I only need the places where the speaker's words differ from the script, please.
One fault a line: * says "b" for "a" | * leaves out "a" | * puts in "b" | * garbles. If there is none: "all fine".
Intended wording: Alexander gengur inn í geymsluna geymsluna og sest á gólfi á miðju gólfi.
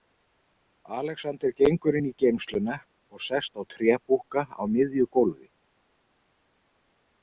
* leaves out "geymsluna"
* says "trébúkka" for "gólfi"